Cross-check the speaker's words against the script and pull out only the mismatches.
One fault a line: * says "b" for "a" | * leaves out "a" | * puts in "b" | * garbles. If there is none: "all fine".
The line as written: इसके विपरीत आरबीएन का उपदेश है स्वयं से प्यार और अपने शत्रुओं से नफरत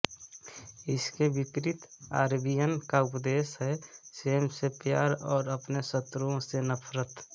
all fine